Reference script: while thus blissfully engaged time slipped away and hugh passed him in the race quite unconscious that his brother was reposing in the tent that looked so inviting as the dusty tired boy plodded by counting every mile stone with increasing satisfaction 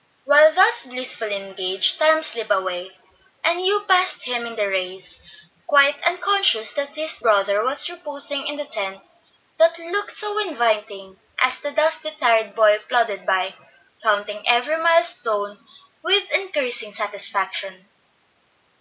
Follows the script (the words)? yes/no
yes